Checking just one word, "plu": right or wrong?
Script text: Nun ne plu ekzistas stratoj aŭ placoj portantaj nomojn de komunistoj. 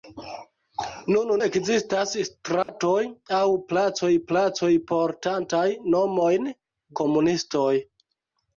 wrong